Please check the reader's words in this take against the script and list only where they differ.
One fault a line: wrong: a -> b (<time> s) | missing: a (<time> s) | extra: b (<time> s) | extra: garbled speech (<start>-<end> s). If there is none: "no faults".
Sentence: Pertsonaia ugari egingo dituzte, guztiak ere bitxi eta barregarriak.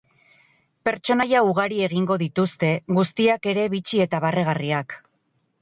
no faults